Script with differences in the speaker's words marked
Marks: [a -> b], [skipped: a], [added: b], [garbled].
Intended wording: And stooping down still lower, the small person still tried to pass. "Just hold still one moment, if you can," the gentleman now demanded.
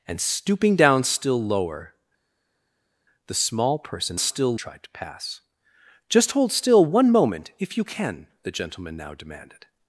And stooping down still lower, the small person still tried to pass. "Just hold still one moment, if you can," the gentleman now demanded.